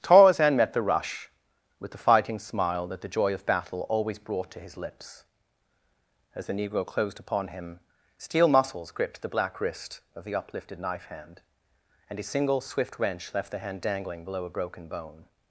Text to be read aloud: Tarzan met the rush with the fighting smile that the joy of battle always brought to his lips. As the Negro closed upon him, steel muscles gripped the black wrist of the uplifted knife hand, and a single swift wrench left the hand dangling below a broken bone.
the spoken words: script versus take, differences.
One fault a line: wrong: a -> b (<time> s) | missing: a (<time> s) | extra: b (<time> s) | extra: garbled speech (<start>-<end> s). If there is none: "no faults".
no faults